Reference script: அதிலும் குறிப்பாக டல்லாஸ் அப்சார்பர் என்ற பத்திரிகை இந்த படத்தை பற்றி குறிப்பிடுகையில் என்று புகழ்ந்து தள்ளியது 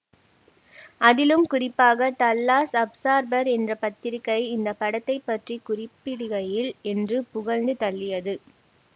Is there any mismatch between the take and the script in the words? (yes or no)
no